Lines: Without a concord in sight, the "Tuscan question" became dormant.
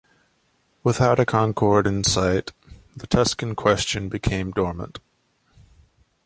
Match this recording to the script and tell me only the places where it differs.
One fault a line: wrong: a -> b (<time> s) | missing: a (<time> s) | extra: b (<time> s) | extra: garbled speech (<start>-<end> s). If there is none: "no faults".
no faults